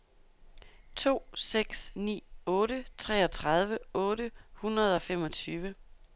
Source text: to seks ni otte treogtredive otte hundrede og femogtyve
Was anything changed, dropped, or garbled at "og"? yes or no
no